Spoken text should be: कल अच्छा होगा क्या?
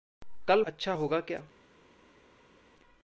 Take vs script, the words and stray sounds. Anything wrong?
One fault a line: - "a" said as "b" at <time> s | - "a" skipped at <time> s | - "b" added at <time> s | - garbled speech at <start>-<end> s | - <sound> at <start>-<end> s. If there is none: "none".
none